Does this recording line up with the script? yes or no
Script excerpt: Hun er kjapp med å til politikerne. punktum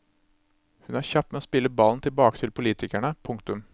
no